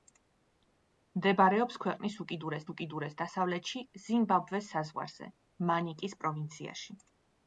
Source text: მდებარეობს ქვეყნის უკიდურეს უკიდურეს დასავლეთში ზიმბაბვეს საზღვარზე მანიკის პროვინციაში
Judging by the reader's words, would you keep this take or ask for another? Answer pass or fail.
pass